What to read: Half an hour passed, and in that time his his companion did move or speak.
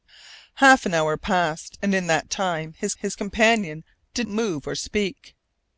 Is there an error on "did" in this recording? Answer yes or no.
no